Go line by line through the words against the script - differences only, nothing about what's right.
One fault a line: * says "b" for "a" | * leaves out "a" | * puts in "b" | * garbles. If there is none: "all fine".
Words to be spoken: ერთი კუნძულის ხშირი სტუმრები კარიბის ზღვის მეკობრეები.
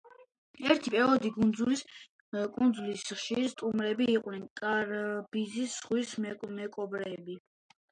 * puts in "პერიოდი"
* puts in "იყვნენ"